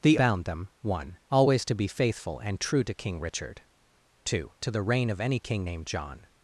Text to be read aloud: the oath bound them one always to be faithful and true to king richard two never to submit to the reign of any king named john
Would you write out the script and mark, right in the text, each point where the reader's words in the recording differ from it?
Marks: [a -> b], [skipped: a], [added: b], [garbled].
the [skipped: oath] bound them one always to be faithful and true to king richard two [skipped: never to submit] to the reign of any king named john